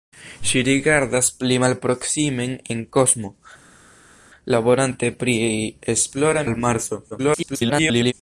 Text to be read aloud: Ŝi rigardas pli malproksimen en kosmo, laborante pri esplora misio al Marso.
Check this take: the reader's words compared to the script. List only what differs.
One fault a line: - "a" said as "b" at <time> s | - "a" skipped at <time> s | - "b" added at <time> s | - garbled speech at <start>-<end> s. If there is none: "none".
- "misio" skipped at 6.4 s
- garbled speech at 7.1-8.1 s